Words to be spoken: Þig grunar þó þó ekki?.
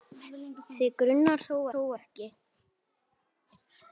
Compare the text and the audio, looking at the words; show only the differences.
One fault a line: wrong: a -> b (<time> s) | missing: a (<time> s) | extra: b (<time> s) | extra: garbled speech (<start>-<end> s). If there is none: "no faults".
no faults